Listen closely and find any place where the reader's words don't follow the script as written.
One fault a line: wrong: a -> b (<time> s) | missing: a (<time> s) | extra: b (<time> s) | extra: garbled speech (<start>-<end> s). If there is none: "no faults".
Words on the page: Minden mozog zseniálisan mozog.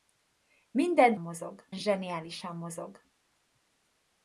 no faults